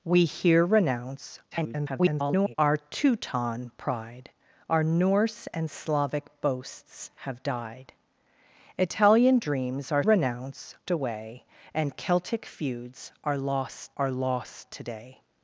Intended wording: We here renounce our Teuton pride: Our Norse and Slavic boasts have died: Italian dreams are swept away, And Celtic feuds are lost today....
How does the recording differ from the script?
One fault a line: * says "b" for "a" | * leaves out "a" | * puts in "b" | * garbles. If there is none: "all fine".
* garbles
* says "renounce" for "swept"
* puts in "are lost"